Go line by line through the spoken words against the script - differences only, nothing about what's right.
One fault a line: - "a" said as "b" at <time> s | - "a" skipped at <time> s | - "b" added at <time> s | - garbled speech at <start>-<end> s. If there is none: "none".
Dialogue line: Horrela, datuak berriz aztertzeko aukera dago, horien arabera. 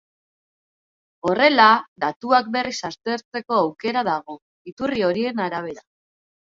- "iturri" added at 4.7 s